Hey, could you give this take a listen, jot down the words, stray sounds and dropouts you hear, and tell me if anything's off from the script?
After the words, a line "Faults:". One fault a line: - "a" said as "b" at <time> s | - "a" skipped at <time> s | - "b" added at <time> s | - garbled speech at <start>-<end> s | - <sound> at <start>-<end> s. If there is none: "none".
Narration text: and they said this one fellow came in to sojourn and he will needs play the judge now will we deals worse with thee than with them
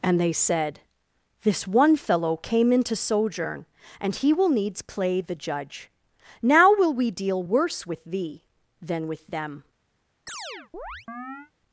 and they said this one fellow came in to sojourn and he will needs play the judge now will we deal worse with thee than with them
Faults:
- "deals" said as "deal" at 7.1 s
- chirp at 10.3-11.5 s